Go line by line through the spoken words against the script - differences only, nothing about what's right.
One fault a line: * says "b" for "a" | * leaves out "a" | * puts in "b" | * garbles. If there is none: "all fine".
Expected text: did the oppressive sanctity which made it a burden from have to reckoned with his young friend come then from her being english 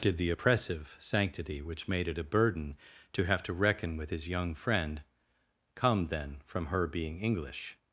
* says "to" for "from"
* says "reckon" for "reckoned"